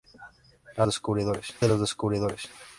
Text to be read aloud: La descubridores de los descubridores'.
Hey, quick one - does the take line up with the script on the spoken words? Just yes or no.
yes